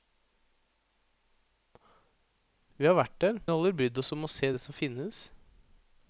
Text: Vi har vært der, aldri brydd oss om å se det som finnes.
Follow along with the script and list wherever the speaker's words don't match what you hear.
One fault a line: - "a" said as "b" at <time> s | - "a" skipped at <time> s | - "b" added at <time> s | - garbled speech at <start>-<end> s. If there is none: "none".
none